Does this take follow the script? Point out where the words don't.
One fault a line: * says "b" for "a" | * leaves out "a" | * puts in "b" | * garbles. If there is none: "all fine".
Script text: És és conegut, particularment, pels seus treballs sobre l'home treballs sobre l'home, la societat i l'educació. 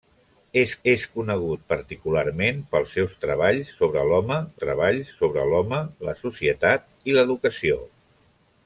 all fine